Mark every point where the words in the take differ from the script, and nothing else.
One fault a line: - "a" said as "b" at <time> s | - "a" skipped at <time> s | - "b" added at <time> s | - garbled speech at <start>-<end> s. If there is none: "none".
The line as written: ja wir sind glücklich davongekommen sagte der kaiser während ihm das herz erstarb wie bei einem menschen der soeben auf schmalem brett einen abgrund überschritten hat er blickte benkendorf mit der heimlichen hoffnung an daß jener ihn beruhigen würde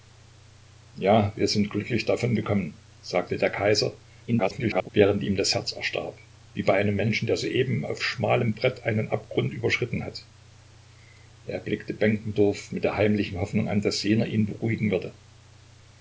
- garbled speech at 4.3-4.9 s